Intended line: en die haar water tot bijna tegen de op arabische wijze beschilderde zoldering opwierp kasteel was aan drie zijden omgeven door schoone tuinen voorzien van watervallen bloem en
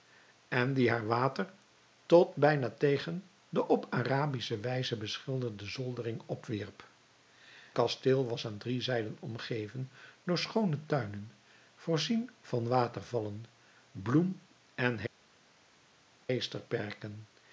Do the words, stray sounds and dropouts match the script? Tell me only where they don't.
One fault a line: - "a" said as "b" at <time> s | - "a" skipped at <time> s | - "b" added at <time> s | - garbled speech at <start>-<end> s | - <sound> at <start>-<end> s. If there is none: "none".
none